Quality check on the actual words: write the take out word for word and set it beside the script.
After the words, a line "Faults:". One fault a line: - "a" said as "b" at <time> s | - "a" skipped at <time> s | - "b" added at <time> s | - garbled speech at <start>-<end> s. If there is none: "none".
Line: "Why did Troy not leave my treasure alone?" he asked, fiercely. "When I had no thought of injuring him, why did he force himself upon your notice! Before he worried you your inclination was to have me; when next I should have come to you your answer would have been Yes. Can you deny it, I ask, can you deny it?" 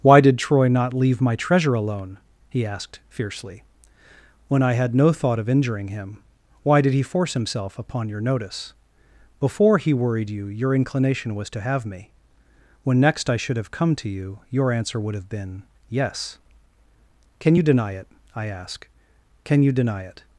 "Why did Troy not leave my treasure alone?" he asked, fiercely. "When I had no thought of injuring him, why did he force himself upon your notice! Before he worried you your inclination was to have me; when next I should have come to you your answer would have been Yes. Can you deny it, I ask, can you deny it?"
Faults:
none